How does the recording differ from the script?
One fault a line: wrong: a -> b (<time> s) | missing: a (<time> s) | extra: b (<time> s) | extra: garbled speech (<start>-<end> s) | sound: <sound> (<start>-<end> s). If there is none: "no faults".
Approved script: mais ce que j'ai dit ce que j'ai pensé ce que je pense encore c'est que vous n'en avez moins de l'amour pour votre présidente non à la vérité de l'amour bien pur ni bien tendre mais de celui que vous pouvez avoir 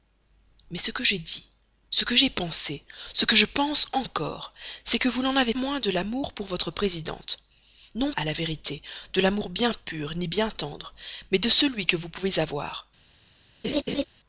sound: laugh (13.6-14.0 s)